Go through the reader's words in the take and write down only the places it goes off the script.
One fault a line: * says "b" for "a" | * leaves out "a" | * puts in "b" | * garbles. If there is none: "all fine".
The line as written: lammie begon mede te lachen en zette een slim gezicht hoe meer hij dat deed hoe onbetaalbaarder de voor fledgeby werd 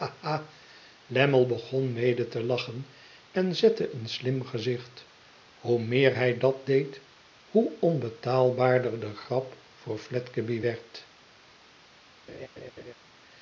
* puts in "grap"